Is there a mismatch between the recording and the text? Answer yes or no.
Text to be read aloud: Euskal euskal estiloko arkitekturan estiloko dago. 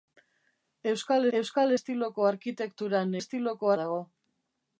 no